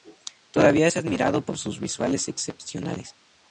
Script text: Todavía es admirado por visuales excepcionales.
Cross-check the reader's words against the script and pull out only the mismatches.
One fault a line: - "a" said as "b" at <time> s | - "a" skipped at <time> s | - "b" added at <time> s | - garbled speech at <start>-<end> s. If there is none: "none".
- "sus" added at 1.6 s